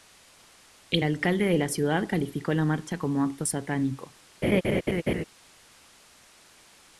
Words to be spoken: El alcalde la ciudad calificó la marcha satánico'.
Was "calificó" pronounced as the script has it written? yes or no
yes